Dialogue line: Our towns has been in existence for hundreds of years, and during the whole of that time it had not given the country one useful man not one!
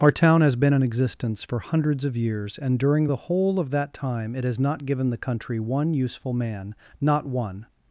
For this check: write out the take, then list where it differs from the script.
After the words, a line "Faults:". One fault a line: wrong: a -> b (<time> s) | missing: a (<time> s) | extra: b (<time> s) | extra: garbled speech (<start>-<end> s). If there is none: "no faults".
Our town has been in existence for hundreds of years, and during the whole of that time it has not given the country one useful man not one!
Faults:
wrong: towns -> town (0.1 s)
wrong: had -> has (4.4 s)